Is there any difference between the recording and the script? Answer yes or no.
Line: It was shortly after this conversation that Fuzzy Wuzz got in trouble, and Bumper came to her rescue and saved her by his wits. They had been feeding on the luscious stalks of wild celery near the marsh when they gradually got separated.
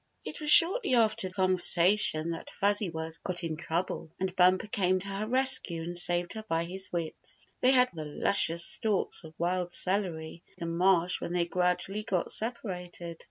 yes